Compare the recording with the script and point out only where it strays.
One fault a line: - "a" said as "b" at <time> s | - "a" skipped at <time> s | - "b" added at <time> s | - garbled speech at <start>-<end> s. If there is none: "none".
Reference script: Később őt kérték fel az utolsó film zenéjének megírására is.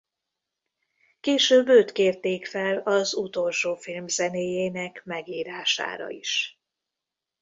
none